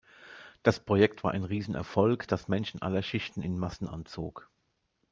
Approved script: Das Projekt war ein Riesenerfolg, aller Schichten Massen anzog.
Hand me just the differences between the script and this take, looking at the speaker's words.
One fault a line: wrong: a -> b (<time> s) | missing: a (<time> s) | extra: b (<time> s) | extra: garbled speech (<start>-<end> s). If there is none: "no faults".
extra: das Menschen (2.3 s)
extra: in (3.4 s)